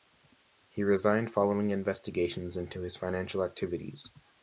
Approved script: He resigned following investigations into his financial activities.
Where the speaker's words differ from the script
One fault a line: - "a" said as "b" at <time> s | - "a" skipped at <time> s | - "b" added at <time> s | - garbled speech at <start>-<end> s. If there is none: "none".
none